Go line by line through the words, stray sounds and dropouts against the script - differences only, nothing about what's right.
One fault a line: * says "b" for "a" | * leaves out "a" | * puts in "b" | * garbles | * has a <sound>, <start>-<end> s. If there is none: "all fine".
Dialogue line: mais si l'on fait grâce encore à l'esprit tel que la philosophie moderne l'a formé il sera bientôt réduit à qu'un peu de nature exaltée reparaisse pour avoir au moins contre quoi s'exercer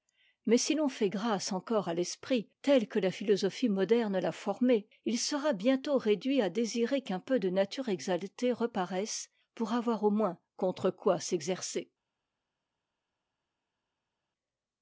* puts in "désirer"